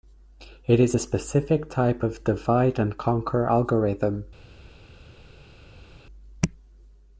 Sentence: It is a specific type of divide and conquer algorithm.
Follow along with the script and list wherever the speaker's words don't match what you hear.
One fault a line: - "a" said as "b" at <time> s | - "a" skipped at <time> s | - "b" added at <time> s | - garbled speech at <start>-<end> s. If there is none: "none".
none